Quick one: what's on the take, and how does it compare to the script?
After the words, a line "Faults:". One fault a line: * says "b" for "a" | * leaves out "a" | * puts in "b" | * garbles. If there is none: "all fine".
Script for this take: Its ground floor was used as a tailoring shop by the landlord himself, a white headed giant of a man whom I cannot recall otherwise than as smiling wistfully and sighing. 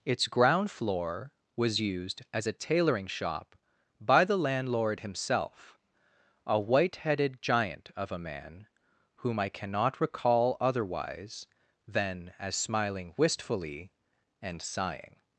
Its ground floor was used as a tailoring shop by the landlord himself, a white headed giant of a man whom I cannot recall otherwise than as smiling wistfully and sighing.
Faults:
all fine